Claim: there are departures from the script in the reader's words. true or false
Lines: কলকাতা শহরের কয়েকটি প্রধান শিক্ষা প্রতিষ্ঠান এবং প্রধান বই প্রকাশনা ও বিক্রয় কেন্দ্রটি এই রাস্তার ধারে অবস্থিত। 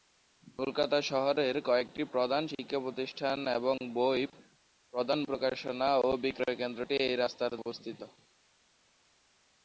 true